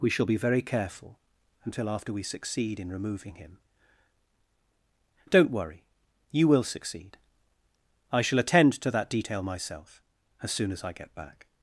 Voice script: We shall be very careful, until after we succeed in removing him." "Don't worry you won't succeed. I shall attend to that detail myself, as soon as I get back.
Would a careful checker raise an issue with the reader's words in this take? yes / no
yes